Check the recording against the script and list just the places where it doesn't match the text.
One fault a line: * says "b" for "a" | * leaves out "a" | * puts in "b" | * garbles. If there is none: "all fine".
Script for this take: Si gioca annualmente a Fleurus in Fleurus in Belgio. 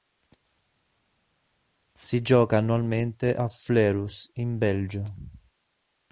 * leaves out "Fleurus in"